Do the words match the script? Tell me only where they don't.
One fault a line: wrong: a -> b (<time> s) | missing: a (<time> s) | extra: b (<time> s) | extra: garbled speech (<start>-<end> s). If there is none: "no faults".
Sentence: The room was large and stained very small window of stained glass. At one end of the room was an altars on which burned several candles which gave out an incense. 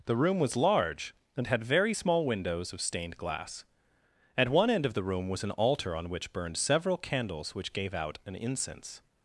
wrong: stained -> had (1.5 s)
wrong: window -> windows (2.3 s)
wrong: altars -> altar (5.5 s)